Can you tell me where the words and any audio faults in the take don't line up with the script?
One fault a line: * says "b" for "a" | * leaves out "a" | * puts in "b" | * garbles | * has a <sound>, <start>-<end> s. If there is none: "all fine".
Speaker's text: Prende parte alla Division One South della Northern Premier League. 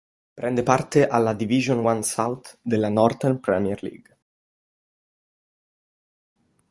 all fine